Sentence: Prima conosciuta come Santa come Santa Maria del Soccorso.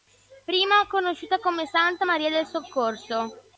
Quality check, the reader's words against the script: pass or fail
fail